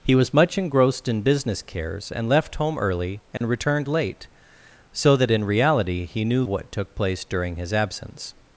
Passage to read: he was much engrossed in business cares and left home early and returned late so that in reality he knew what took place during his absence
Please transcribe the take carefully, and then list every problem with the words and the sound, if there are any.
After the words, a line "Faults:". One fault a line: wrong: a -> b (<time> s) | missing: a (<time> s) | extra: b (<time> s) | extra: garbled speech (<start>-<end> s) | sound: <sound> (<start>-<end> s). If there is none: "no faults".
he was much engrossed in business cares and left home early and returned late so that in reality he knew what took place during his absence
Faults:
sound: dropout (3.4-3.4 s)